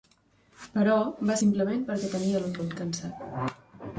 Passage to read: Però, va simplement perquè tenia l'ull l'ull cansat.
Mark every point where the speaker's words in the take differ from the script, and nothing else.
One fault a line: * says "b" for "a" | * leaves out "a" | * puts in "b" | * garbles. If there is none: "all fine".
all fine